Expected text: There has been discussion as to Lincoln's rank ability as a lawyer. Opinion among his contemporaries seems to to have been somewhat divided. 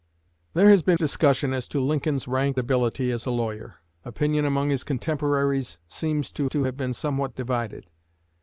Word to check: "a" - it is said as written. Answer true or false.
true